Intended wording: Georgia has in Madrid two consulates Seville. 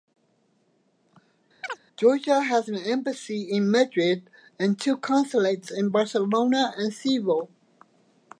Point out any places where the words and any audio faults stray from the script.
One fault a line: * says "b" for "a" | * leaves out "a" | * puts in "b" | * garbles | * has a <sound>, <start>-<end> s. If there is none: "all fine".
* has a chirp, 1.6-1.8 s
* puts in "an embassy"
* puts in "and"
* puts in "in Barcelona and"